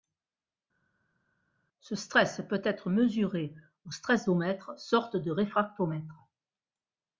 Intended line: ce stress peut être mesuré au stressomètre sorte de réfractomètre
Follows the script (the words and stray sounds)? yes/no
yes